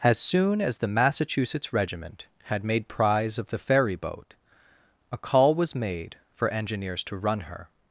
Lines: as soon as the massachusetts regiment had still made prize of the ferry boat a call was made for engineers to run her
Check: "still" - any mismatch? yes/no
yes